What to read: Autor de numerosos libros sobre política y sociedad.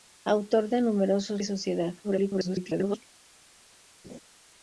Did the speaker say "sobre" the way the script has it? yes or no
no